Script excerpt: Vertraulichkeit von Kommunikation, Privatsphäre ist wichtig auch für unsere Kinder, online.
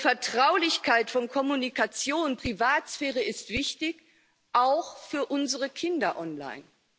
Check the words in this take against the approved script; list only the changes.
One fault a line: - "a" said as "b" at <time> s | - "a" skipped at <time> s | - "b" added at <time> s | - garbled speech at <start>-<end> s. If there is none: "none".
none